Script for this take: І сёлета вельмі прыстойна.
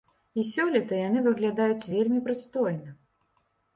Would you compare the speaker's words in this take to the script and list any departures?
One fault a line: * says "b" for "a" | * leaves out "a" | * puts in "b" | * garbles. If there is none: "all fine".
* puts in "яны выглядаюць"